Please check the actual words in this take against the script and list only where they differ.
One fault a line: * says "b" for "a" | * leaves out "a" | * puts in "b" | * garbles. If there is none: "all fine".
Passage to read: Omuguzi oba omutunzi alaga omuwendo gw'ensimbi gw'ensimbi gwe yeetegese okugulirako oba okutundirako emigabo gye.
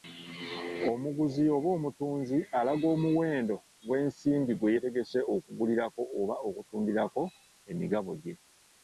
* leaves out "gw'ensimbi"